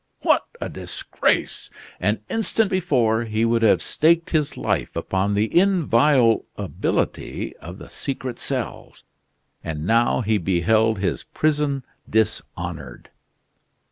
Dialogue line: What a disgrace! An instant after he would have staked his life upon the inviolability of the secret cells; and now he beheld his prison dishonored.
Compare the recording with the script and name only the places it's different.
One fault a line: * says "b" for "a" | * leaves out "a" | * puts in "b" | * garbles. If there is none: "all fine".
* says "before" for "after"